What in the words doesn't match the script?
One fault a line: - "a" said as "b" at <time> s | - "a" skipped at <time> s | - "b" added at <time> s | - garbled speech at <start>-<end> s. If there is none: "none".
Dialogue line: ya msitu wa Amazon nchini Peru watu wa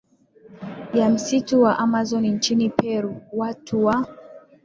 none